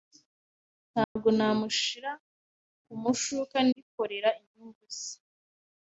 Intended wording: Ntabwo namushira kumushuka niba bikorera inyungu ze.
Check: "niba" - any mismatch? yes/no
yes